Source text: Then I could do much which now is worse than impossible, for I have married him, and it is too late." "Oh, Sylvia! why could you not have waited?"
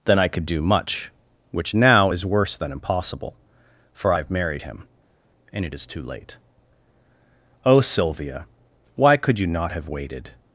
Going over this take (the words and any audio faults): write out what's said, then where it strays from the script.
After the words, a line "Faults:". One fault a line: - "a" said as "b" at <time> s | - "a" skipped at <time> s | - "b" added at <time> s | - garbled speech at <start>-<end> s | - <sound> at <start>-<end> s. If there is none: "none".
Then I could do much which now is worse than impossible, for I have married him, and it is too late." "Oh, Sylvia! why could you not have waited?"
Faults:
none